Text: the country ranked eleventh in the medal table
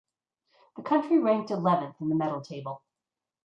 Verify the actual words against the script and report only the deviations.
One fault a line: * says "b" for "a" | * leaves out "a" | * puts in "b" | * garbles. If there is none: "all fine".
all fine